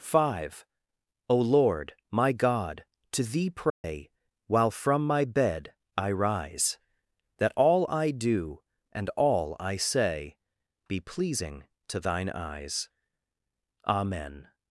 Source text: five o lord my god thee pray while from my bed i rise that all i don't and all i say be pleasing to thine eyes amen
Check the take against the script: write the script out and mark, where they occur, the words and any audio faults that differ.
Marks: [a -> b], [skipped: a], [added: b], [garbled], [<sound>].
five o lord my god [added: to] thee pray [dropout] while from my bed i rise that all i [don't -> do] and all i say be pleasing to thine eyes amen